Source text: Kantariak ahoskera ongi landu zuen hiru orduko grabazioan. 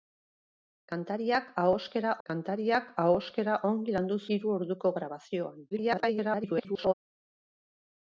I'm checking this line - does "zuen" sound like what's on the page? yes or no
no